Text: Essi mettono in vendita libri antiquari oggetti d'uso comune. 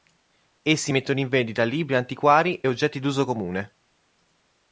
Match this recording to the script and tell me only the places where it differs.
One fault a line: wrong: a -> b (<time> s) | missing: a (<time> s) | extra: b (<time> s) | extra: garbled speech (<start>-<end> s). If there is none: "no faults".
no faults